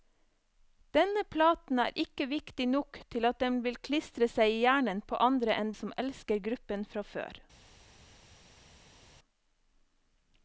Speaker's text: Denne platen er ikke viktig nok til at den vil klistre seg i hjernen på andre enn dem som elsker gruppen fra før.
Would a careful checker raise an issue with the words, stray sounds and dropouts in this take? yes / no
yes